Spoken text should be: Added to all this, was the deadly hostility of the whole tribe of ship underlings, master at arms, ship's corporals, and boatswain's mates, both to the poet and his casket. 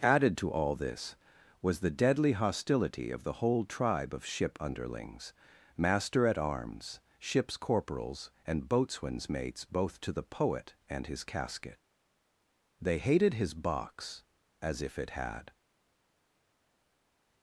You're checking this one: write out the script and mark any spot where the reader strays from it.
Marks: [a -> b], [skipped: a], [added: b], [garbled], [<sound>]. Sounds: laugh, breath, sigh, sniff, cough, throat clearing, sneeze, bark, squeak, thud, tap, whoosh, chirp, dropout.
Added to all this, was the deadly hostility of the whole tribe of ship underlings, master at arms, ship's corporals, and boatswain's mates, both to the poet and his casket. [added: They hated his box as if it had]